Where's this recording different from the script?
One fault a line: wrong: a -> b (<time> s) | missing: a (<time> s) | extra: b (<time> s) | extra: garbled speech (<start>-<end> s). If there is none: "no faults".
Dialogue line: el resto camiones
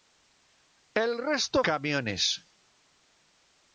no faults